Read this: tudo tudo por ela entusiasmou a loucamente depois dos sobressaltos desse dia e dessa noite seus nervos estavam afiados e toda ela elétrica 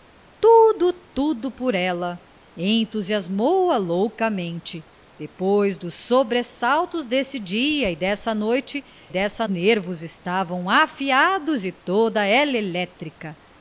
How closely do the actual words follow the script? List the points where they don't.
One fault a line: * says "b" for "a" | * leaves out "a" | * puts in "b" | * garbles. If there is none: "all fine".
* says "dessa" for "seus"